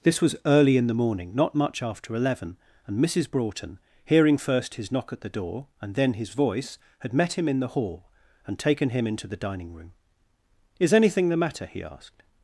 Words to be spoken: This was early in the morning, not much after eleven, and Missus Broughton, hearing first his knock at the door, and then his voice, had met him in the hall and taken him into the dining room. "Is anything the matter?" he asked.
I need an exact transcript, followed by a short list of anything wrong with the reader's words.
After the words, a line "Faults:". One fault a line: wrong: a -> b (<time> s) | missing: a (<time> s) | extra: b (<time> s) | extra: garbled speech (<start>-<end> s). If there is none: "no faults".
This was early in the morning, not much after eleven, and Missus Broughton, hearing first his knock at the door, and then his voice, had met him in the hall and taken him into the dining room. "Is anything the matter?" he asked.
Faults:
no faults